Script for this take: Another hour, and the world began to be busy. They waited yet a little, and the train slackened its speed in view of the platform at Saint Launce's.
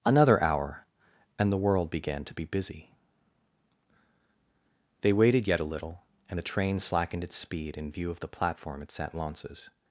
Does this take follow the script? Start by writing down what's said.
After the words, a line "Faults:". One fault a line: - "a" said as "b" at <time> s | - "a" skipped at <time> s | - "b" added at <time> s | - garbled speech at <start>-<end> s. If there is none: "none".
Another hour, and the world began to be busy. They waited yet a little, and the train slackened its speed in view of the platform at Saint Launce's.
Faults:
none